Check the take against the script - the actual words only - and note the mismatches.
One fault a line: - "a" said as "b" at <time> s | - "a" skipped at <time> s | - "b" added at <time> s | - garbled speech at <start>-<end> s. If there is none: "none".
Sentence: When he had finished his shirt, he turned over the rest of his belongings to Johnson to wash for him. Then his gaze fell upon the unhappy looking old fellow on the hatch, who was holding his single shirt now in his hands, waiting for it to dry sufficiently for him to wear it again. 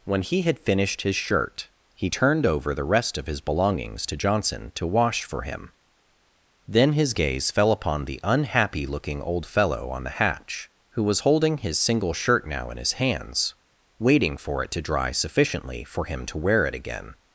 none